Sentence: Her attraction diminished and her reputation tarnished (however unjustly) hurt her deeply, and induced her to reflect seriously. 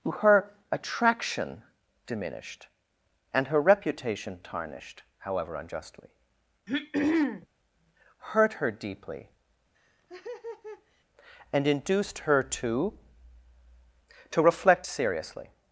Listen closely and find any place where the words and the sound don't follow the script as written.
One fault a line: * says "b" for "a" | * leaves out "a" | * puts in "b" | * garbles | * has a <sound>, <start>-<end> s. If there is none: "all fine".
* has a throat clearing, 6.7-7.5 s
* has a laugh, 9.7-11.0 s
* puts in "to"